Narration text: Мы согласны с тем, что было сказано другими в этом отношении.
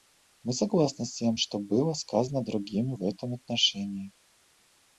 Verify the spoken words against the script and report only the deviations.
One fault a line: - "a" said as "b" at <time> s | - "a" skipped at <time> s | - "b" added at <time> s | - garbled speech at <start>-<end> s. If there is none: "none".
none